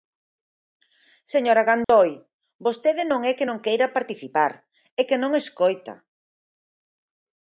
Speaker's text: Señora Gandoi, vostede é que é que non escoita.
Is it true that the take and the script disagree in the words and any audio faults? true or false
true